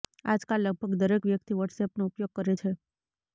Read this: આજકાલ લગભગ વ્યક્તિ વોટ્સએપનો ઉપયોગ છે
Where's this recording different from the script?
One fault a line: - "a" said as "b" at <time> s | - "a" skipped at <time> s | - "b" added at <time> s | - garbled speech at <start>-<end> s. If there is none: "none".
- "દરેક" added at 1.0 s
- "કરે" added at 2.3 s